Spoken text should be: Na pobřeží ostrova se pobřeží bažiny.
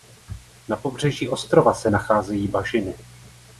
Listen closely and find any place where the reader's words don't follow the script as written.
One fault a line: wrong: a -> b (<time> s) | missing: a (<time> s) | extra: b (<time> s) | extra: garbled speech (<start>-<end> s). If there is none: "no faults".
wrong: pobřeží -> nacházejí (1.9 s)